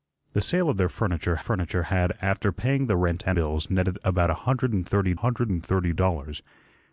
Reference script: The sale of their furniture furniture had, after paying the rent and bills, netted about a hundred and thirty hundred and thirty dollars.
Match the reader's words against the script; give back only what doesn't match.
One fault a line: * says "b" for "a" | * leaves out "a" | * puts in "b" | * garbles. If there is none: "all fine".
all fine